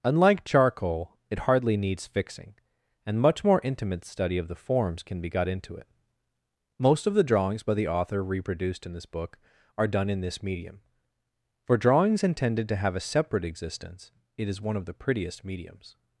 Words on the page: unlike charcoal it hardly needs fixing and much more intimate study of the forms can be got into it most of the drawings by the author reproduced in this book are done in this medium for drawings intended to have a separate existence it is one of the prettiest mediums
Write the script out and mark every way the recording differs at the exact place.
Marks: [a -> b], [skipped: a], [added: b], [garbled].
unlike charcoal it hardly needs fixing and much more intimate study of the forms can be got into it most of the drawings by the author reproduced in this book are done in this medium for drawings intended to have a separate existence it is one of the prettiest mediums